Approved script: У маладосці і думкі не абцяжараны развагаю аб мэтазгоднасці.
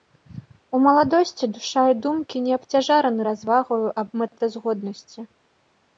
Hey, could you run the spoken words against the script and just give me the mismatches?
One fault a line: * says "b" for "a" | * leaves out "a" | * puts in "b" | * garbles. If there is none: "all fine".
* puts in "душа"